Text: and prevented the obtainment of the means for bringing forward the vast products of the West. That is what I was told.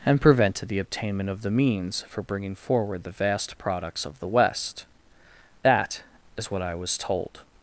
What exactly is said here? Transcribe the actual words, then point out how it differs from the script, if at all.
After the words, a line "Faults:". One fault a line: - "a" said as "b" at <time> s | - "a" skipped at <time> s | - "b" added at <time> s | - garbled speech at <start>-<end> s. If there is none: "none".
and prevented the obtainment of the means for bringing forward the vast products of the West. That is what I was told.
Faults:
none